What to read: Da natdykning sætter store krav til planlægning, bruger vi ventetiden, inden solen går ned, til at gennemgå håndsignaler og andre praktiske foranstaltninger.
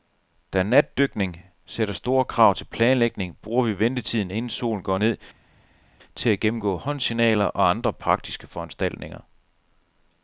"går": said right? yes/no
yes